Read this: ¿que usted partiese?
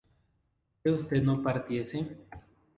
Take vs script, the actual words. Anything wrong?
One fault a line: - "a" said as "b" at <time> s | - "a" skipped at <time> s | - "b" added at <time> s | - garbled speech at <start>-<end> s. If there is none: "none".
- "no" added at 1.2 s